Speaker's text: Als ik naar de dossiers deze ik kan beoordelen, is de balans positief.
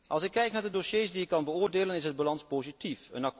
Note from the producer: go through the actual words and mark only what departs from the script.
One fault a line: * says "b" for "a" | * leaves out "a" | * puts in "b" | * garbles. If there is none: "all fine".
* puts in "kijk"
* says "die" for "deze"